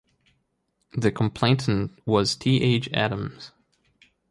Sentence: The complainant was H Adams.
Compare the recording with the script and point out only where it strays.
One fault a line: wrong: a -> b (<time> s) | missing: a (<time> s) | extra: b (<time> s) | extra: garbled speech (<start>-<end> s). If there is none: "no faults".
extra: T (2.4 s)